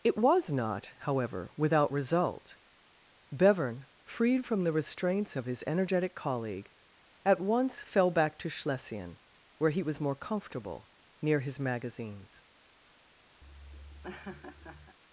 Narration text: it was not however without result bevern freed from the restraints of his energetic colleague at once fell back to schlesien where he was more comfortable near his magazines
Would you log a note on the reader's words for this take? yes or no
no